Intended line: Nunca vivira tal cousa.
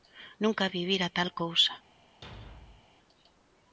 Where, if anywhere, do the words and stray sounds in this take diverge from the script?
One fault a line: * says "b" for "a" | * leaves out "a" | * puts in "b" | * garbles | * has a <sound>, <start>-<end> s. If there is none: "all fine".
* has a thud, 2.2-2.9 s